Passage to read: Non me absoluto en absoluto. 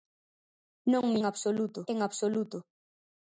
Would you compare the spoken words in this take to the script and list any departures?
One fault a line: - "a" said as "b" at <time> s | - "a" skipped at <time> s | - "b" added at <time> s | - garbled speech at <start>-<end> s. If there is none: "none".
none